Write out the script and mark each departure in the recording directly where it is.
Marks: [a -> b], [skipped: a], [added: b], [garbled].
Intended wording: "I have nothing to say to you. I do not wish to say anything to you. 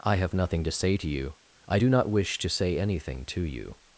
"I have nothing to say to you. I do not wish to say anything to you.